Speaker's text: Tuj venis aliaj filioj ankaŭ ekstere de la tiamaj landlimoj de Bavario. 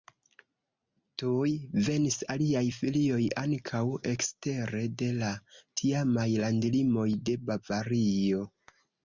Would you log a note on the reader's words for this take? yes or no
no